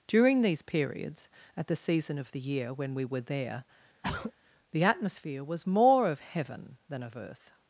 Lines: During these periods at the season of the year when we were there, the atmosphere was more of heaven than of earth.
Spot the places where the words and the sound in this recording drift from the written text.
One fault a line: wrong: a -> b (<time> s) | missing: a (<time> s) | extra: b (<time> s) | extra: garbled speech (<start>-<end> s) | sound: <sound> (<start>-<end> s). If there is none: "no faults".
sound: throat clearing (4.0-4.3 s)